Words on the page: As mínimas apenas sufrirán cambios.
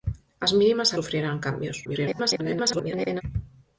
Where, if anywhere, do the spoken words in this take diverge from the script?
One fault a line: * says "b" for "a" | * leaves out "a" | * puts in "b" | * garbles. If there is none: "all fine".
* leaves out "apenas"
* garbles